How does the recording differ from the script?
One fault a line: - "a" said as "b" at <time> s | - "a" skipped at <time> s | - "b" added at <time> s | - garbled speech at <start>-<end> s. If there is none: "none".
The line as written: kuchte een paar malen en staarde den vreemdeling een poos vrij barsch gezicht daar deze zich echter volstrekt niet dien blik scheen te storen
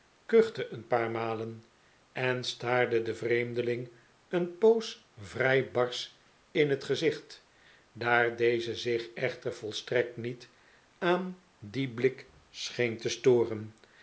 - "in het" added at 6.5 s
- "aan" added at 11.0 s